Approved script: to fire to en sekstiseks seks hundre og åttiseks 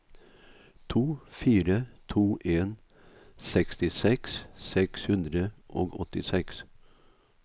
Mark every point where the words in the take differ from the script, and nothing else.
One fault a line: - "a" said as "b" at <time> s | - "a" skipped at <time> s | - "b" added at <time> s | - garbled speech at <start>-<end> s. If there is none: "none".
none